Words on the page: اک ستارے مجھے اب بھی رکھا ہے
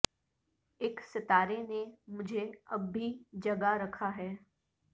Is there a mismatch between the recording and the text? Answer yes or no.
yes